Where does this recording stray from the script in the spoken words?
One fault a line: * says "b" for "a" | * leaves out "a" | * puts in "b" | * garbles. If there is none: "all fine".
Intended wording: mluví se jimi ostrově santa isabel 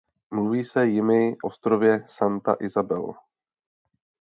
all fine